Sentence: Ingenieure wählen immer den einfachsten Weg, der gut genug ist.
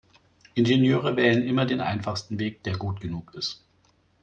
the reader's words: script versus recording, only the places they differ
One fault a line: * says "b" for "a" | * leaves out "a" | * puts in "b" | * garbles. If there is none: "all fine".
all fine